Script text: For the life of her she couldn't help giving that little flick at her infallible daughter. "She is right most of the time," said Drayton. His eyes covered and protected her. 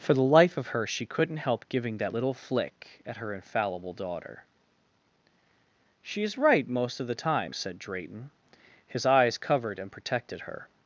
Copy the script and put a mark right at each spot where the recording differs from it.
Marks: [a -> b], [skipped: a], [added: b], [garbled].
For the life of her she couldn't help giving that little flick at her infallible daughter. "She is right most of the time," said Drayton. His eyes covered and protected her.